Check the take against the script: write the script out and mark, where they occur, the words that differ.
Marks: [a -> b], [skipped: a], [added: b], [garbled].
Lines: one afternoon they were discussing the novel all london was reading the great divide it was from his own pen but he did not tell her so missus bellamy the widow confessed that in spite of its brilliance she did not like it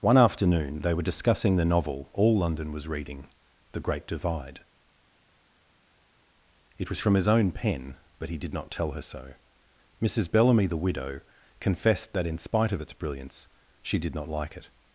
one afternoon they were discussing the novel all london was reading the great divide it was from his own pen but he did not tell her so missus bellamy the widow confessed that in spite of its brilliance she did not like it